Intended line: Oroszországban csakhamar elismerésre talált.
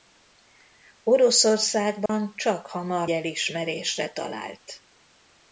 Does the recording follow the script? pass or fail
pass